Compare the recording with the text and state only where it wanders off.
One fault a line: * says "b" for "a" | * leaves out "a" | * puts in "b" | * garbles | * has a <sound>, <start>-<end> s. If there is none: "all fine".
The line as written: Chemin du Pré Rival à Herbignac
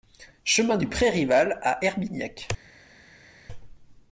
all fine